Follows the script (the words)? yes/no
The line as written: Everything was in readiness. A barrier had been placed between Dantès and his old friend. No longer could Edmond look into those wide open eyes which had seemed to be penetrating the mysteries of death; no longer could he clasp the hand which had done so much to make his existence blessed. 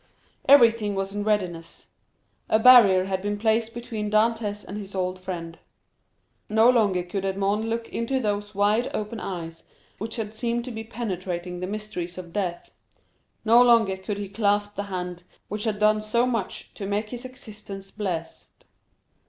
yes